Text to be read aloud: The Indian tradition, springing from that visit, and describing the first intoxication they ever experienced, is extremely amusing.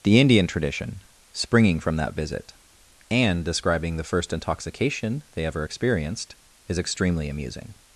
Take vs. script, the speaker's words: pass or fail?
pass